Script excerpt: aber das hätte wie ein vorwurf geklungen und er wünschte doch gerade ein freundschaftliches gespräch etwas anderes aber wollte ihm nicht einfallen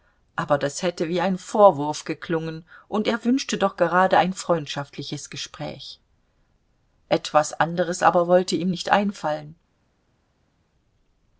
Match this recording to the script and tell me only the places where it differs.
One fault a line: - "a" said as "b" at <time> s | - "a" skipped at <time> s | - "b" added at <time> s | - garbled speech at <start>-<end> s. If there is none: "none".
none